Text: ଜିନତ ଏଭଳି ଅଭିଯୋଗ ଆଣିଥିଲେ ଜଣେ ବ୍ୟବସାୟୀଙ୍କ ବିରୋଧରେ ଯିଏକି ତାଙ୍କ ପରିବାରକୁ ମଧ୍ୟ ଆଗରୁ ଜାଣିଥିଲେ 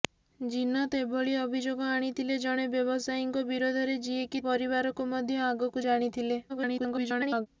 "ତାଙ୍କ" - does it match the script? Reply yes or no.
no